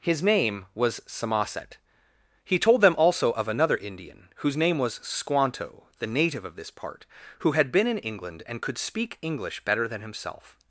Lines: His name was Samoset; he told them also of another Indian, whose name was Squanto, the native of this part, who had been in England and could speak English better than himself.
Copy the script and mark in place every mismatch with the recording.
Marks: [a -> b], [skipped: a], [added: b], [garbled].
His name was Samoset; he told them also of another Indian, whose name was Squanto, the native of this part, who had been in England and could speak English better than himself.